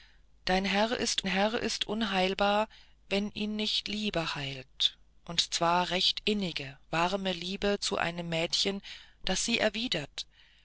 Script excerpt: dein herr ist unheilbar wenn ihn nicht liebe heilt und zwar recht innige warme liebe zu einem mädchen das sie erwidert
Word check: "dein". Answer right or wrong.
right